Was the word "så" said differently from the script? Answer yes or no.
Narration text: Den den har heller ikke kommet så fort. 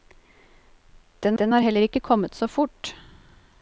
no